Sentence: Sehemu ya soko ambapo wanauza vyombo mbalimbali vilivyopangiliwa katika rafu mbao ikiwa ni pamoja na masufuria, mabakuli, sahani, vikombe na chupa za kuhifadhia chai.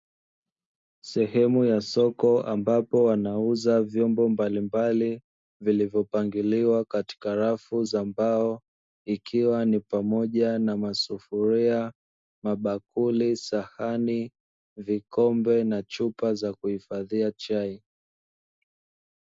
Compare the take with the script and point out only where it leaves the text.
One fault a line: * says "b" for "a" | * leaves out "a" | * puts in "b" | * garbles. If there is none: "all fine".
* puts in "za"